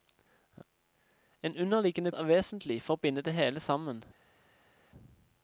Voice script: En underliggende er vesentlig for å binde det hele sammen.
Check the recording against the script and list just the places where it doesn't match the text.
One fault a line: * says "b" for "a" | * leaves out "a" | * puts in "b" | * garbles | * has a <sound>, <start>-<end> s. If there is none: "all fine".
all fine